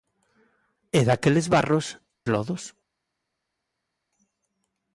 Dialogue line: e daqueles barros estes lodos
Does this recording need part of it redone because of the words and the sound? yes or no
yes